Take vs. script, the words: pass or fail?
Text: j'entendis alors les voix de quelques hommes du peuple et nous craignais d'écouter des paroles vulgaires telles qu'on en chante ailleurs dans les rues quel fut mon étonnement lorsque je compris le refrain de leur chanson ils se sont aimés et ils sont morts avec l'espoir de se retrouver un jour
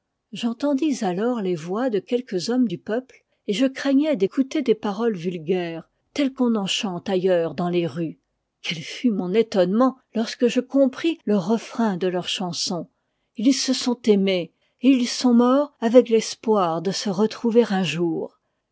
fail